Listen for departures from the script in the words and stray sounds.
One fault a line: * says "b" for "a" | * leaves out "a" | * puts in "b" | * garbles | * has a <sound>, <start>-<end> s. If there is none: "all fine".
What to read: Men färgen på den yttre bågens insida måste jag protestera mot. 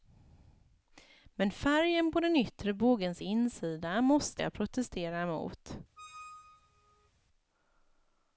* has a squeak, 6.0-7.1 s